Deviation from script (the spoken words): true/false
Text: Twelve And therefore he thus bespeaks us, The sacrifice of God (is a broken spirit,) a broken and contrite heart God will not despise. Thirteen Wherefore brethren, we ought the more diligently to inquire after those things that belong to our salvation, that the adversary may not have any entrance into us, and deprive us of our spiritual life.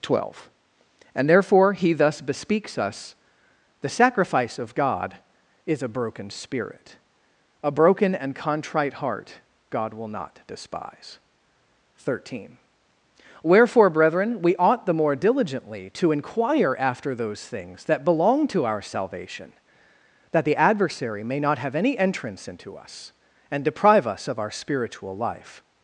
false